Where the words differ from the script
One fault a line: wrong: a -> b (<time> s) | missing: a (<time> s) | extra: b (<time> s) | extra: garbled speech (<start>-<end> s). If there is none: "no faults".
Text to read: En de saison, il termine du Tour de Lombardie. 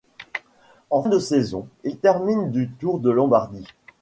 no faults